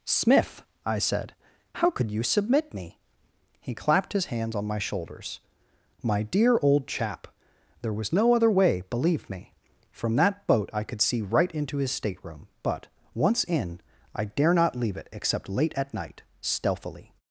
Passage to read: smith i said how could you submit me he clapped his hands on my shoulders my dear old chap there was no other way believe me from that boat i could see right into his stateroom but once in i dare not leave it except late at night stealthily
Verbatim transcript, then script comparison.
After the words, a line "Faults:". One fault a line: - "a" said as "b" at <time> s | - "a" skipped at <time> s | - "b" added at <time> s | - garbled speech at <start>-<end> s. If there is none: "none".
smith i said how could you submit me he clapped his hands on my shoulders my dear old chap there was no other way believe me from that boat i could see right into his stateroom but once in i dare not leave it except late at night stealthily
Faults:
none